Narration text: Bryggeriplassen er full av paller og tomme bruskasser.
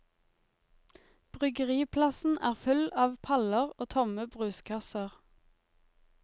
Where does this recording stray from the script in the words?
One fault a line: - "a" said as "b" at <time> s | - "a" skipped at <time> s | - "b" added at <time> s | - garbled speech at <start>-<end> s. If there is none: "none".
none